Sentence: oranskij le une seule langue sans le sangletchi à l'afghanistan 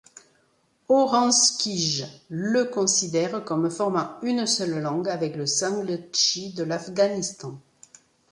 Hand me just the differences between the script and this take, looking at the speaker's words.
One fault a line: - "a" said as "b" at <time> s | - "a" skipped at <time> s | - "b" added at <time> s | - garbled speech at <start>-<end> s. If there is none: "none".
- "considère comme formant" added at 2.6 s
- "sans" said as "avec" at 5.1 s
- "à" said as "de" at 6.5 s